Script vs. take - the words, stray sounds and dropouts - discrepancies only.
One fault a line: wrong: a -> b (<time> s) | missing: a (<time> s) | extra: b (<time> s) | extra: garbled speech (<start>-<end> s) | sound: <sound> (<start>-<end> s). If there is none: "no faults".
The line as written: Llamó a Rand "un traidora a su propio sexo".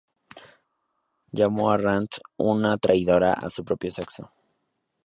wrong: un -> una (2.4 s)